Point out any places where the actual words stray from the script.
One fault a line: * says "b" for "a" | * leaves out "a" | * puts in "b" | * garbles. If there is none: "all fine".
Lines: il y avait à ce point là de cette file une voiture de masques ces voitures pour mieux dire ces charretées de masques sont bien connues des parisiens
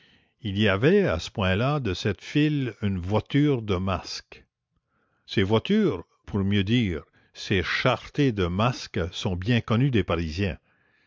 all fine